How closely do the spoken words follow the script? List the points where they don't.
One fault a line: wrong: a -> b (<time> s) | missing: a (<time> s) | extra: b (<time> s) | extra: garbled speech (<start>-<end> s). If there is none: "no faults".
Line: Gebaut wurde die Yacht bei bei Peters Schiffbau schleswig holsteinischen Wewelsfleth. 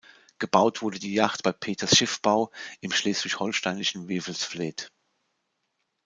missing: bei (1.5 s)
extra: im (2.8 s)